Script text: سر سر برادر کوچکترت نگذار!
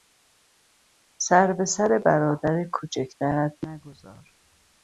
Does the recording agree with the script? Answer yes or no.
no